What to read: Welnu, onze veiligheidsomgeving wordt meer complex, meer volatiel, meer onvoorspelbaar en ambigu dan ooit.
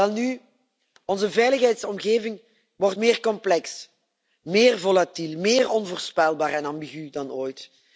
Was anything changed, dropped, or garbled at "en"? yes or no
no